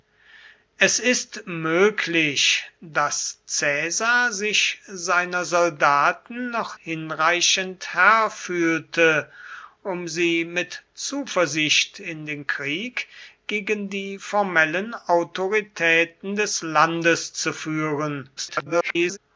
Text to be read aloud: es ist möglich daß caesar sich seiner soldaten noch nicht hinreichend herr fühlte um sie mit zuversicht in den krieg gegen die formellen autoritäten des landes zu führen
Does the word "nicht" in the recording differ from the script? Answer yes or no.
yes